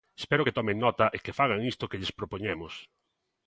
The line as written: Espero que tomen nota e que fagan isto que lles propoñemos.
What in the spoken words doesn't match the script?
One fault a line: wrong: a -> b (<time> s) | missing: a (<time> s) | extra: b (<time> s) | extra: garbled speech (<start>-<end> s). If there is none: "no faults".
no faults